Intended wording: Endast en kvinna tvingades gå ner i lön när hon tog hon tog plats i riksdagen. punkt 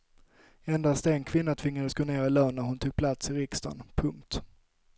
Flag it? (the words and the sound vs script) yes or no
yes